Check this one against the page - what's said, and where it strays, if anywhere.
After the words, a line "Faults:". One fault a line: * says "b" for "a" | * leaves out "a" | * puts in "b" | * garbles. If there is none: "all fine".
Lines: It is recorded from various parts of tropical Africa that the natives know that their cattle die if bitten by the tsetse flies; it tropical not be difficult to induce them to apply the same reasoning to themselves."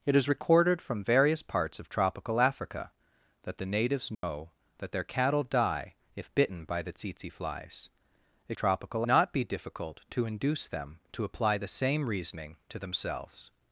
It is recorded from various parts of tropical Africa that the natives know that their cattle die if bitten by the tsetse flies; it tropical not be difficult to induce them to apply the same reasoning to themselves."
Faults:
all fine